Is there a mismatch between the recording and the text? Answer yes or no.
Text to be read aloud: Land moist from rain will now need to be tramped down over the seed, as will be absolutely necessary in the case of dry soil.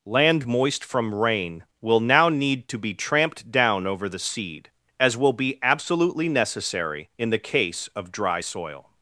no